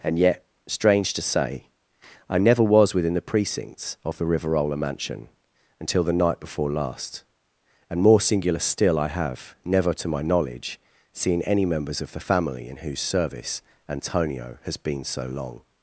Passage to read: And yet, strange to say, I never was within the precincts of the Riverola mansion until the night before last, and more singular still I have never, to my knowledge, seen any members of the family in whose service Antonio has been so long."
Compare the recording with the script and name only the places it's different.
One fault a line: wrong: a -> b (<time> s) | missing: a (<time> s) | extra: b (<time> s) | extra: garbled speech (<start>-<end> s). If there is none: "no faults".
no faults